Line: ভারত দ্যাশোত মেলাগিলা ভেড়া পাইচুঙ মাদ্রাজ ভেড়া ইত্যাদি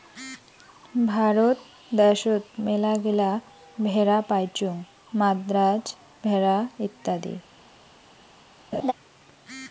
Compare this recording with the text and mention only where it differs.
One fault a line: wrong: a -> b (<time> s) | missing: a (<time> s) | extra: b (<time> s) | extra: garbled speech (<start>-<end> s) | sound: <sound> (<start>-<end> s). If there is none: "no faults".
sound: laugh (8.7-8.9 s)